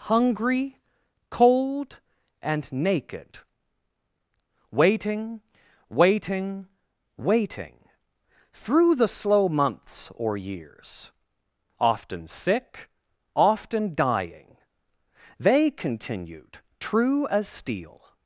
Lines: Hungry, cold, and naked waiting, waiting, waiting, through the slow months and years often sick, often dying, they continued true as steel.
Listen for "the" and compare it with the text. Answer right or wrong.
right